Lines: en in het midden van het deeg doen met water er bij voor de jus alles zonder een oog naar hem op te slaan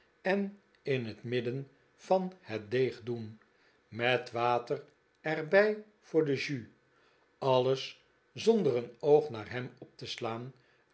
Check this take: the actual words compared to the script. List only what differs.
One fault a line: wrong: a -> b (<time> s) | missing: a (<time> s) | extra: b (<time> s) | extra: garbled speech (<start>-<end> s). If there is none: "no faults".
no faults